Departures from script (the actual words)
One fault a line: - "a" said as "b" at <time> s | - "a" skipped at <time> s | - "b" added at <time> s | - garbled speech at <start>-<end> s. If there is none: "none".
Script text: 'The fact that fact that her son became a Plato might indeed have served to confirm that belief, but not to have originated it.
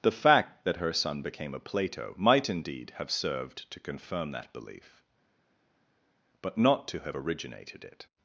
- "fact that" skipped at 0.8 s